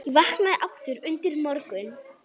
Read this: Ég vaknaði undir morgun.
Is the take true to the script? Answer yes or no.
no